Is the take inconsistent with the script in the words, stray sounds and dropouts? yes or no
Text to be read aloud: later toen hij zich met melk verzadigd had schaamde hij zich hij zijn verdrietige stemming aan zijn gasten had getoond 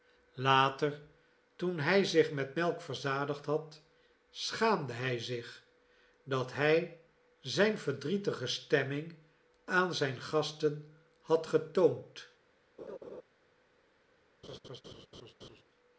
yes